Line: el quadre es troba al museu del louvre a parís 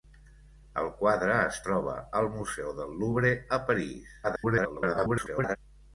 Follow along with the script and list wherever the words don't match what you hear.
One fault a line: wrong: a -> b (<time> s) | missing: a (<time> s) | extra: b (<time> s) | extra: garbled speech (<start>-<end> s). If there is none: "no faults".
extra: garbled speech (4.2-5.6 s)